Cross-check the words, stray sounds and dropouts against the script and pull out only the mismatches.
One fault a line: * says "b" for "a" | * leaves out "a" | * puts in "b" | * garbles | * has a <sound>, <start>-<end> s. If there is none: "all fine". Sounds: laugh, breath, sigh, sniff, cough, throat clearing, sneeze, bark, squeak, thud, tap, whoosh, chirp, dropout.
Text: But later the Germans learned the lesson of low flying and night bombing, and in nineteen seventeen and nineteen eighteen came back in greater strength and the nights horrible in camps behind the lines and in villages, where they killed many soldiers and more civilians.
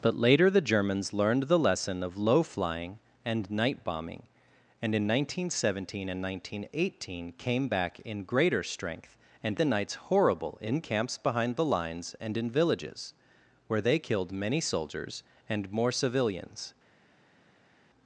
all fine